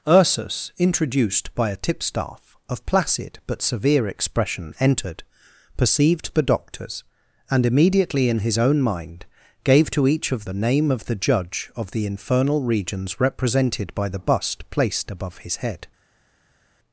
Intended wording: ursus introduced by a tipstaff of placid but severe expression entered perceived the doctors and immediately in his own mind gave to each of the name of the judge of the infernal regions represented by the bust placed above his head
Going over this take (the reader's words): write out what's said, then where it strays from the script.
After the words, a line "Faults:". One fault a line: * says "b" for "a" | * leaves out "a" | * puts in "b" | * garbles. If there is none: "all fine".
ursus introduced by a tipstaff of placid but severe expression entered perceived the doctors and immediately in his own mind gave to each of the name of the judge of the infernal regions represented by the bust placed above his head
Faults:
all fine